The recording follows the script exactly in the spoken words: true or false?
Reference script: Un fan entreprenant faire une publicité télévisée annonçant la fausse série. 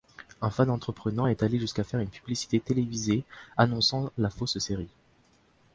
false